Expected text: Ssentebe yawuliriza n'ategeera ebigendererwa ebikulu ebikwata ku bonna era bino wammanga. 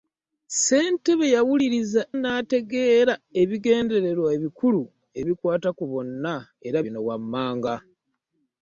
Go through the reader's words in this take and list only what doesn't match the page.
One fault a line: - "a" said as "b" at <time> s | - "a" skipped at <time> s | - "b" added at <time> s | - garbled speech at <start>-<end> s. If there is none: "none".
none